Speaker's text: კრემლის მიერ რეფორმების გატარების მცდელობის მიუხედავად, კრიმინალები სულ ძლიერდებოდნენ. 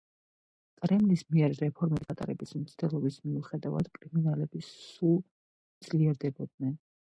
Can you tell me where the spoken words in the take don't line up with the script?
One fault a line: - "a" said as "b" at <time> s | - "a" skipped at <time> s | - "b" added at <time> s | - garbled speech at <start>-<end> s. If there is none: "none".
none